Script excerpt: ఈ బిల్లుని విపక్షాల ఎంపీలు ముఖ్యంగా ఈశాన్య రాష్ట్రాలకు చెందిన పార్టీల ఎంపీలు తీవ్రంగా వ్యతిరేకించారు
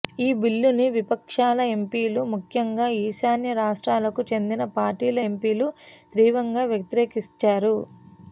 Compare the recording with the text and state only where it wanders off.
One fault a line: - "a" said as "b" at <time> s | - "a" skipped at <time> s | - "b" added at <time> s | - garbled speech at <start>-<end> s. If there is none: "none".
none